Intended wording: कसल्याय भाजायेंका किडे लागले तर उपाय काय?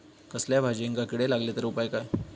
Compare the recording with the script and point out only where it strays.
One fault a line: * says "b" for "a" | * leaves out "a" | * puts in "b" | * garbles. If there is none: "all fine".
all fine